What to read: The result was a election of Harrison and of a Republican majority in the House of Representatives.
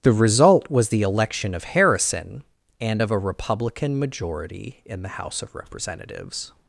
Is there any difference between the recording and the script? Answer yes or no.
yes